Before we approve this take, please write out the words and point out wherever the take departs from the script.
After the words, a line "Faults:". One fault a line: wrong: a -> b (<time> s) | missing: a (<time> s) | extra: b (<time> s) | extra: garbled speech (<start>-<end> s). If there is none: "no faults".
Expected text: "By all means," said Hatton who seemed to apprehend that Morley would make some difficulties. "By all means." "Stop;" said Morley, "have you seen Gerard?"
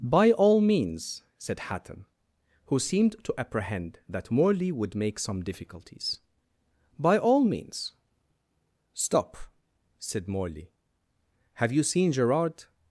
"By all means," said Hatton who seemed to apprehend that Morley would make some difficulties. "By all means." "Stop;" said Morley, "have you seen Gerard?"
Faults:
no faults